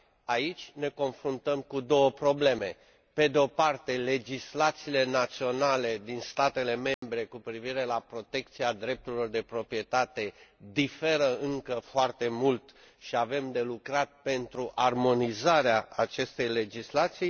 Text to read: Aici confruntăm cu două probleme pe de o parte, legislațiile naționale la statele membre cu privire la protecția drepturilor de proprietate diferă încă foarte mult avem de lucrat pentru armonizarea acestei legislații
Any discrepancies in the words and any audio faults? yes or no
yes